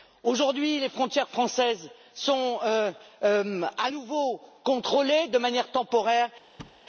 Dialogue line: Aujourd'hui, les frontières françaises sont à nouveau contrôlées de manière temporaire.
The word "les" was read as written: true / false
true